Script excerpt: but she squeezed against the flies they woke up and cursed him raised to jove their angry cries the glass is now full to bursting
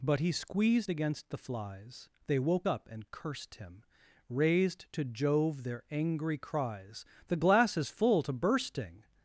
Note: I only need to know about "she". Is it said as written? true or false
false